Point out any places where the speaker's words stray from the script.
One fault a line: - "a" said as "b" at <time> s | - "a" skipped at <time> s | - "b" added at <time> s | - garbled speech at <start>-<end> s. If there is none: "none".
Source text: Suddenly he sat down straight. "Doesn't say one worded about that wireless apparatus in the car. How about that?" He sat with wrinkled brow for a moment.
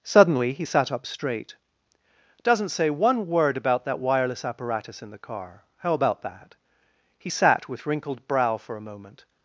- "down" said as "up" at 0.9 s
- "worded" said as "word" at 3.3 s